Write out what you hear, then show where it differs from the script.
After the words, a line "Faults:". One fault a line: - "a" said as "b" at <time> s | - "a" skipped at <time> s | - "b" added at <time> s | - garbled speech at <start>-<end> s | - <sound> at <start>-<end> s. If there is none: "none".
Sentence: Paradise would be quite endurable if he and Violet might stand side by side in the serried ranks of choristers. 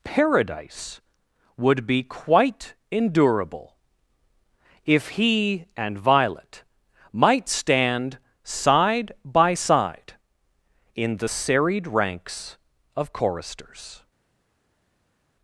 Paradise would be quite endurable if he and Violet might stand side by side in the serried ranks of choristers.
Faults:
none